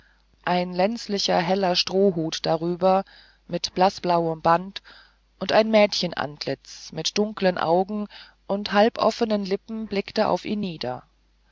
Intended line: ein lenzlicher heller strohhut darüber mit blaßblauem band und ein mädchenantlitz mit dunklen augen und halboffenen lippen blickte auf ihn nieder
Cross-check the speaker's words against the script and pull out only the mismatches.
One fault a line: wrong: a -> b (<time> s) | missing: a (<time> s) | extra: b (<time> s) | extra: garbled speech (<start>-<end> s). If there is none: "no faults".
no faults